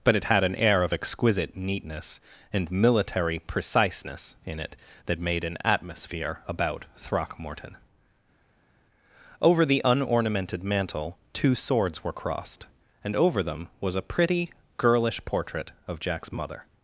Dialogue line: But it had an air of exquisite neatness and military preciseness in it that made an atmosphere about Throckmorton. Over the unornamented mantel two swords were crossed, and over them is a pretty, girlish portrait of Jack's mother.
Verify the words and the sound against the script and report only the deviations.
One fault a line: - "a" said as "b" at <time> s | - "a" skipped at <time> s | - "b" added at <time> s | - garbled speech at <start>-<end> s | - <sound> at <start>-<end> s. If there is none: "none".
- "is" said as "was" at 13.8 s